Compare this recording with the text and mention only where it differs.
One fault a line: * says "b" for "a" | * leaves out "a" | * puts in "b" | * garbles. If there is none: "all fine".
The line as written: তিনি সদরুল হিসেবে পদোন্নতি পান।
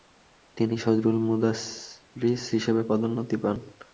* puts in "মুদাররিস"